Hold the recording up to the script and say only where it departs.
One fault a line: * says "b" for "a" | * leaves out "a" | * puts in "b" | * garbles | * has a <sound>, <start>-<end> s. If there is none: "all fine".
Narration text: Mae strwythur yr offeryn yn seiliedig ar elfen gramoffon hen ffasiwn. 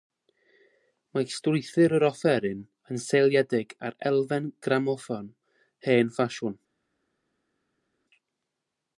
all fine